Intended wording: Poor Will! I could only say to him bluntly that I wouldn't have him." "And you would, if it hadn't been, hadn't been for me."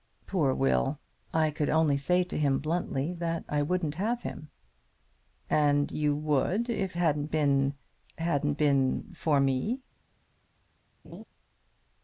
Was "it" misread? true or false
true